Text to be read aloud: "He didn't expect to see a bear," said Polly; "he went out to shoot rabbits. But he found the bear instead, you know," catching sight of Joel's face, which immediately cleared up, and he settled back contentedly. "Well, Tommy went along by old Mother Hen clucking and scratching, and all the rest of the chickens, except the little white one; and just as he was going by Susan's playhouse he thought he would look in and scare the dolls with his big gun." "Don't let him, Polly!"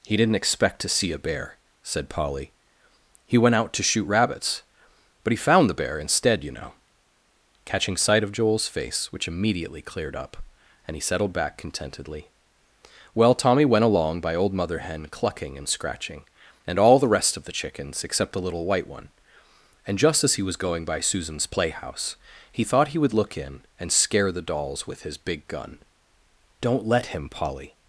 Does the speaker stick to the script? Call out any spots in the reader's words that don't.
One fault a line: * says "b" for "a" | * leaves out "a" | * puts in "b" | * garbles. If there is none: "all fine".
all fine